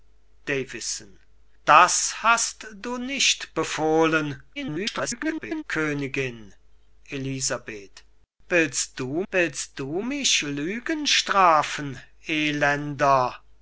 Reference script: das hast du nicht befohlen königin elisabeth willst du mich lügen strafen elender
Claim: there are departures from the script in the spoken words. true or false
true